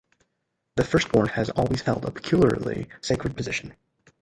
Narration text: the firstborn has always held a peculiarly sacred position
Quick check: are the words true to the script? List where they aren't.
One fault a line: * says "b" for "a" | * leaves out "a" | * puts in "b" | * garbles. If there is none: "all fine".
all fine